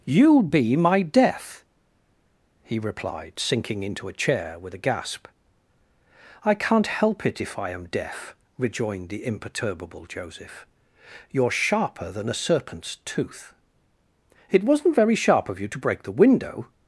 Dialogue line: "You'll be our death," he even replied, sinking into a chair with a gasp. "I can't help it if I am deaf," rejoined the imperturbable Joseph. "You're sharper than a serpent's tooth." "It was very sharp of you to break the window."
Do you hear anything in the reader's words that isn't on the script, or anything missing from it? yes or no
yes